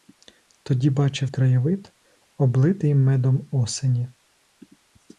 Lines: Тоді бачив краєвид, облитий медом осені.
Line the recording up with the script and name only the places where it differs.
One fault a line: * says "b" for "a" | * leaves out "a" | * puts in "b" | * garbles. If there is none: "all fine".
all fine